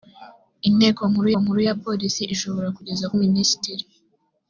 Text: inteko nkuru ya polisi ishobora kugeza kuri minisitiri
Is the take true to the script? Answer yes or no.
no